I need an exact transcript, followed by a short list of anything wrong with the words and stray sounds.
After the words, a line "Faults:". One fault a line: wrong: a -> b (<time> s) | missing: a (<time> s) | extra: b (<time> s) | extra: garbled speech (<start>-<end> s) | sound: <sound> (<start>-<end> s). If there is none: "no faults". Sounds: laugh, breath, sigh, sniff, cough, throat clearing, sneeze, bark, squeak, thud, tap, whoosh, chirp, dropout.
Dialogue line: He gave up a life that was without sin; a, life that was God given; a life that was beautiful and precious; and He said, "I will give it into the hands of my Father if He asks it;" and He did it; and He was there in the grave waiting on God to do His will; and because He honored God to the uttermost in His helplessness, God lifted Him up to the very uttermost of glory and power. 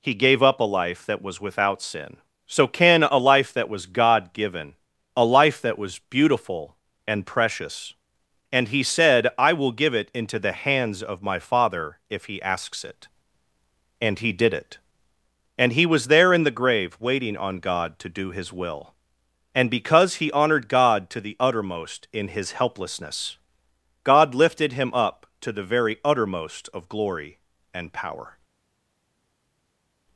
He gave up a life that was without sin; so can a, life that was God given; a life that was beautiful and precious; and He said, "I will give it into the hands of my Father if He asks it;" and He did it; and He was there in the grave waiting on God to do His will; and because He honored God to the uttermost in His helplessness, God lifted Him up to the very uttermost of glory and power.
Faults:
extra: so can (2.5 s)